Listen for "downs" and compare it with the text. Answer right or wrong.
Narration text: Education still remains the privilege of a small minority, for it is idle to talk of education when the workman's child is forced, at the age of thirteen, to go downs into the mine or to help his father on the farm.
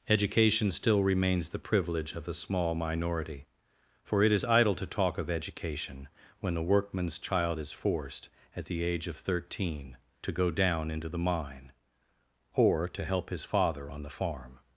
wrong